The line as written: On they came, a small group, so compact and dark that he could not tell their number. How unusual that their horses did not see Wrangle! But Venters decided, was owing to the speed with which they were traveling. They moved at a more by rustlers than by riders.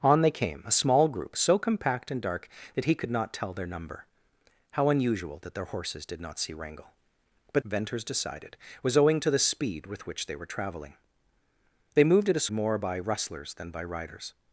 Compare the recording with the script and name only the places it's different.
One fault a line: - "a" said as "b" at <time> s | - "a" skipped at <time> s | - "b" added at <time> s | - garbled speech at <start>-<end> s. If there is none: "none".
none